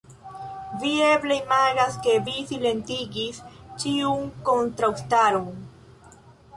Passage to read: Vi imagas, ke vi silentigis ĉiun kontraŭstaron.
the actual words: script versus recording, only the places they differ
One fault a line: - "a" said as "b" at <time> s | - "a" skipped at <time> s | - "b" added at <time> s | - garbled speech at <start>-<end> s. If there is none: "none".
- "eble" added at 1.1 s